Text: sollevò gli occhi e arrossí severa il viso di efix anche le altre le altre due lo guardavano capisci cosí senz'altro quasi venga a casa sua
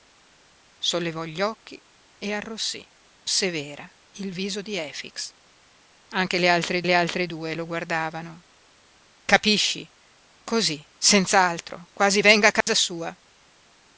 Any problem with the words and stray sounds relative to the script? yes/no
yes